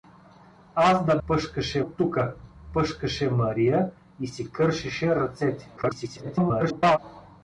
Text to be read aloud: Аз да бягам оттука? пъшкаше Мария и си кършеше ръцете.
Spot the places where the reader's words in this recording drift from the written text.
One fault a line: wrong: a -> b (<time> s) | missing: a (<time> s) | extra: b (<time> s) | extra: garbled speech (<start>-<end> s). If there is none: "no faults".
wrong: бягам -> пъшкаше (1.3 s)
extra: garbled speech (5.8-7.0 s)